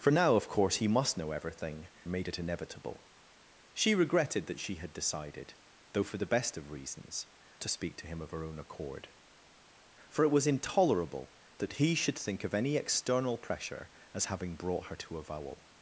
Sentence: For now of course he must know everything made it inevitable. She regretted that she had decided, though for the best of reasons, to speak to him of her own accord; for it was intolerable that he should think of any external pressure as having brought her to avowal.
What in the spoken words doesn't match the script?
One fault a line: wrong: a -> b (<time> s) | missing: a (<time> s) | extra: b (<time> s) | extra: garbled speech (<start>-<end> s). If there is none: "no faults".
no faults